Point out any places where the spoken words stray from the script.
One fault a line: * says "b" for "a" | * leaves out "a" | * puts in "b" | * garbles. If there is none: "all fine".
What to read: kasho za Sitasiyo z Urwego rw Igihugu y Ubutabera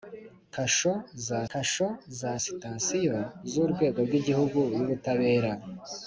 * puts in "kasho za"